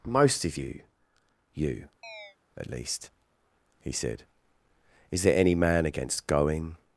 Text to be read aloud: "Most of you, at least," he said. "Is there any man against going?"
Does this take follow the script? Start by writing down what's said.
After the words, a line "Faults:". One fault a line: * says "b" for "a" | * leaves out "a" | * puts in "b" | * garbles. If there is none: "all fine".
"Most of you you, at least," he said. "Is there any man against going?"
Faults:
* puts in "you"